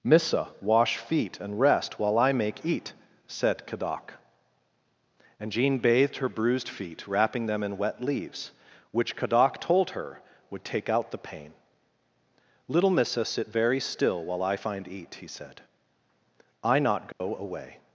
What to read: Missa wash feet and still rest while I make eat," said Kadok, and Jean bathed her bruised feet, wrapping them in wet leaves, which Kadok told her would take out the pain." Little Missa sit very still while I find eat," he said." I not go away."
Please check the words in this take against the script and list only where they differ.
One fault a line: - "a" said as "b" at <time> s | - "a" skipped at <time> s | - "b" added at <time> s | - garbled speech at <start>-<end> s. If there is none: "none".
- "still" skipped at 1.6 s